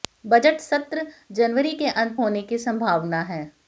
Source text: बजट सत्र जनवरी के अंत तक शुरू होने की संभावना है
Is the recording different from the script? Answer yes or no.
yes